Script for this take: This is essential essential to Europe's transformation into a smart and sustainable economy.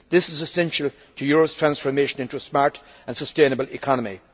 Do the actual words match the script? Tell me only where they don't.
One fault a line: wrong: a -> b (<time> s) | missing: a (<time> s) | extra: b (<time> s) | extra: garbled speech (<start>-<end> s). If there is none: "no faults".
missing: essential (0.9 s)